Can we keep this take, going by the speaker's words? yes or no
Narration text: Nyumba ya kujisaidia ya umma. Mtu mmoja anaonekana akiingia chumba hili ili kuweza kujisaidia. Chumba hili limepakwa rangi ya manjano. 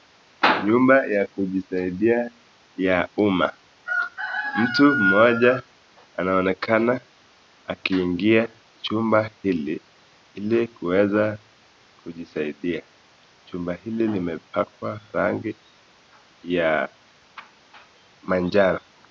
yes